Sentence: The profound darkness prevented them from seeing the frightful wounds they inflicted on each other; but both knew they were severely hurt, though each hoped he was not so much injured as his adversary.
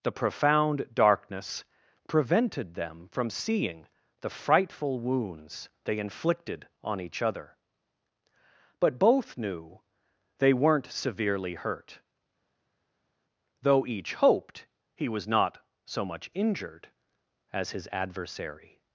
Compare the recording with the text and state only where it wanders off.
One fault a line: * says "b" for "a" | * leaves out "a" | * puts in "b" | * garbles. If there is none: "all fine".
* says "weren't" for "were"